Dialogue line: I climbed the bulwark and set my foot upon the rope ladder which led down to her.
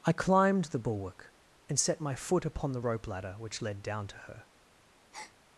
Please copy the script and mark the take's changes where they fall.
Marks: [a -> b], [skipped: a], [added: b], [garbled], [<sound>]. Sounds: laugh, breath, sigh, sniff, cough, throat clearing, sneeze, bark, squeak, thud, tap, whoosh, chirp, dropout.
I climbed the bulwark and set my foot upon the rope ladder which led down to her. [breath]